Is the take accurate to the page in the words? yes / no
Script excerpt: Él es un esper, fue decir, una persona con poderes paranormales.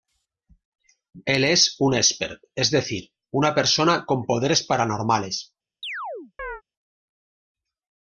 no